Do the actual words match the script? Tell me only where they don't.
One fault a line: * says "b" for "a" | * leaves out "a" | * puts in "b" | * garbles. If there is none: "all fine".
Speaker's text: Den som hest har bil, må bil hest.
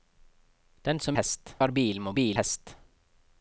all fine